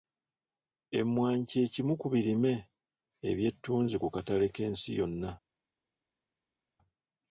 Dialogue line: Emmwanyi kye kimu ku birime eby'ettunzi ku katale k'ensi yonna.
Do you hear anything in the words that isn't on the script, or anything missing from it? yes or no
no